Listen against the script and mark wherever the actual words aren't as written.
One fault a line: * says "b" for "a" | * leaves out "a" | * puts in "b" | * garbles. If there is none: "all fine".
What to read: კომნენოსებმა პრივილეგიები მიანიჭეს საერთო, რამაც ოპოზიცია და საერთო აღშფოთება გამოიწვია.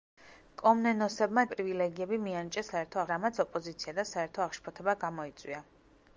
all fine